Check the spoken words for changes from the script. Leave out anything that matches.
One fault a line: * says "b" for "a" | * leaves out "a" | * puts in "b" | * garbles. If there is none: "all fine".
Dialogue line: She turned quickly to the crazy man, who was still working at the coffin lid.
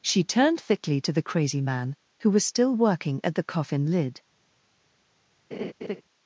* says "thickly" for "quickly"